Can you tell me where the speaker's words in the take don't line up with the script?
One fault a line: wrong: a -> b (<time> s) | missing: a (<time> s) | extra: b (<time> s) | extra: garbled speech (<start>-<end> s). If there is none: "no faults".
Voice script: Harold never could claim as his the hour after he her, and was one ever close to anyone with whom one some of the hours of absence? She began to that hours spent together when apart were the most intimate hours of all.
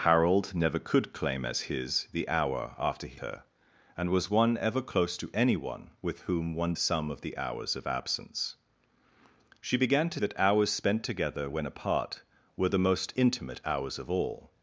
no faults